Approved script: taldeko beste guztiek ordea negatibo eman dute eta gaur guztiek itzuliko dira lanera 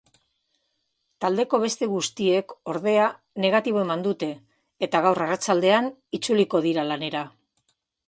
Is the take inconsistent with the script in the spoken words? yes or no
yes